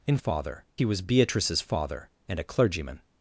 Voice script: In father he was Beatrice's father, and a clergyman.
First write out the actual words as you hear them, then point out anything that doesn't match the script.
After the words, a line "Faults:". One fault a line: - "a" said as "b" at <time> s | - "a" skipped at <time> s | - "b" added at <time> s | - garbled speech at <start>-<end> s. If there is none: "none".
In father he was Beatrice's father, and a clergyman.
Faults:
none